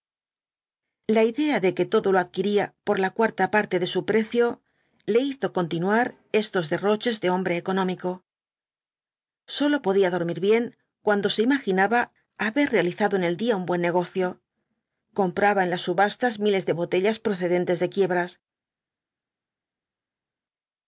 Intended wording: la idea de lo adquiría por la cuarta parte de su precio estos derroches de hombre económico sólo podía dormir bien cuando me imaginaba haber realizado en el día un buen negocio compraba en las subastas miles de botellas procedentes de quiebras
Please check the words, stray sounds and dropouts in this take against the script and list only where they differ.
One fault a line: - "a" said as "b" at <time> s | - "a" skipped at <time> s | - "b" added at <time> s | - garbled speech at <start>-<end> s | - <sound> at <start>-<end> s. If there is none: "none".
- "que todo" added at 1.8 s
- "le hizo continuar" added at 5.0 s
- "me" said as "se" at 11.3 s